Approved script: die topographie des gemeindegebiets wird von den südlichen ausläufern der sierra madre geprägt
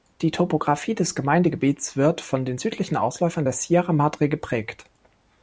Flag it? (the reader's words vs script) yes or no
no